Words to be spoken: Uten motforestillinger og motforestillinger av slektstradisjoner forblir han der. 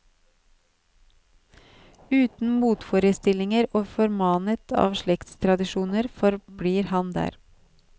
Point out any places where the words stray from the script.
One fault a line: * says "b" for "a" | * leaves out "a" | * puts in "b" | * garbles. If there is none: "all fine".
* says "formanet" for "motforestillinger"